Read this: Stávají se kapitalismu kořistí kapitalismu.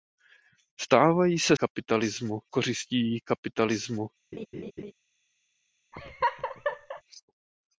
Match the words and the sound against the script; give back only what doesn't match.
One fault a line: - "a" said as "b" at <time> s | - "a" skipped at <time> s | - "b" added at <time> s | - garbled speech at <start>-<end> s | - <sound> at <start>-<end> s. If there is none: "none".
- laugh at 4.3-4.9 s
- laugh at 5.9-7.0 s